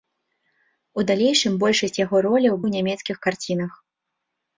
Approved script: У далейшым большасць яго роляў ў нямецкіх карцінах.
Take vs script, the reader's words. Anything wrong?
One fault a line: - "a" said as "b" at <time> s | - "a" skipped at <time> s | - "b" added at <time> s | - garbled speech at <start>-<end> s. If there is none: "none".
none